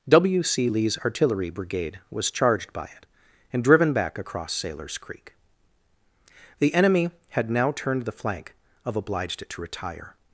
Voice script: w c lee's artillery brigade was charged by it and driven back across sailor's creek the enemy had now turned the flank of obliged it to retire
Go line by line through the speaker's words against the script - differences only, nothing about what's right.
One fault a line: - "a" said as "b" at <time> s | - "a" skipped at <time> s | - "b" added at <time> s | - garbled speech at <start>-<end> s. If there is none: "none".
none